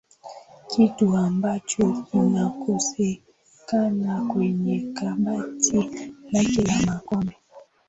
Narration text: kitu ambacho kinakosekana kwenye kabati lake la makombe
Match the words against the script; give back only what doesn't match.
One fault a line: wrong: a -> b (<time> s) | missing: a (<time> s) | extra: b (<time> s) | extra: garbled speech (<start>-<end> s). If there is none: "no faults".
no faults